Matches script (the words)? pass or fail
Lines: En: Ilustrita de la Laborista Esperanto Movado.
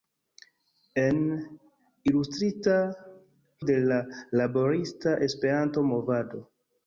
pass